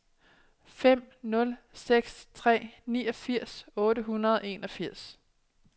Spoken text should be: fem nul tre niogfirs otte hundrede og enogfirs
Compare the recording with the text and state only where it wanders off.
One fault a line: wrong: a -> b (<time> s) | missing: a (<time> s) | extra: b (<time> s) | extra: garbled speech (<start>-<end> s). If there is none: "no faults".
extra: seks (1.7 s)